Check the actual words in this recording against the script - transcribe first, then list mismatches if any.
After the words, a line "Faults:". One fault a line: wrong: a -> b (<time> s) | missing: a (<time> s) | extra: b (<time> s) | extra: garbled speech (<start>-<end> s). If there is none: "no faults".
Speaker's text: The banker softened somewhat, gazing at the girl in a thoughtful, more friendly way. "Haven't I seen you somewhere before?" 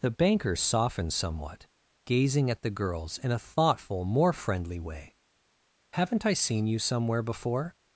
The banker softened somewhat, gazing at the girls in a thoughtful, more friendly way. "Haven't I seen you somewhere before?"
Faults:
wrong: girl -> girls (2.7 s)